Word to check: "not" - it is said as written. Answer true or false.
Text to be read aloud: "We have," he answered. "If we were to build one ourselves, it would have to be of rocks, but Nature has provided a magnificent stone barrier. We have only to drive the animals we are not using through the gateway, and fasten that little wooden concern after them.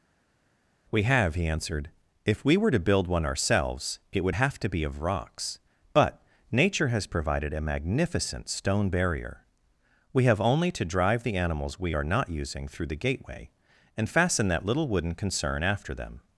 true